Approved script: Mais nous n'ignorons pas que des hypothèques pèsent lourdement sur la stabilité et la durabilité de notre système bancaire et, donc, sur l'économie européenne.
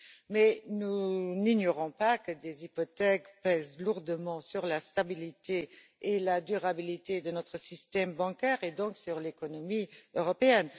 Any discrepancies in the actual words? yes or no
no